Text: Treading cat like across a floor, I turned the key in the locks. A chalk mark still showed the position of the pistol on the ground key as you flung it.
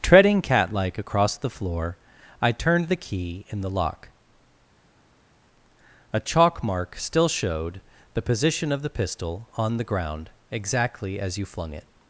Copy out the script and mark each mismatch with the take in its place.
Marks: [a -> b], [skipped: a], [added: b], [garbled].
Treading cat like across [a -> the] floor, I turned the key in the [locks. -> lock] A chalk mark still showed the position of the pistol on the ground [key -> exactly] as you flung it.